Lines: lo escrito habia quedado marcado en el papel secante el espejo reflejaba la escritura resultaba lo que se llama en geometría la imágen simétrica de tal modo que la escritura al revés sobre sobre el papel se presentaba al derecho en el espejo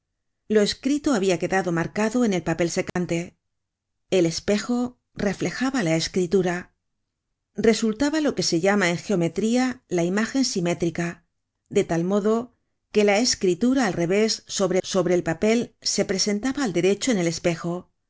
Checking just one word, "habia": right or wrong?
right